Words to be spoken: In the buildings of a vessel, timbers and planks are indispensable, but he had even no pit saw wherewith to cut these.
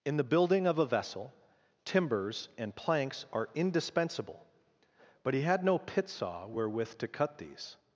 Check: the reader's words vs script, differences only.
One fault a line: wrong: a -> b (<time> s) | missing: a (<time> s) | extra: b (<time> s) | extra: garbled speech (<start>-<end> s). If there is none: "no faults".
wrong: buildings -> building (0.2 s)
missing: even (5.6 s)